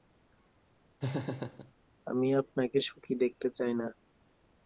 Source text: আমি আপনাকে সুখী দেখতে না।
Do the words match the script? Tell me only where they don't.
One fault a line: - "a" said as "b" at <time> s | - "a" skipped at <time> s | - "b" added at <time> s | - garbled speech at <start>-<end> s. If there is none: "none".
- "চাই" added at 3.5 s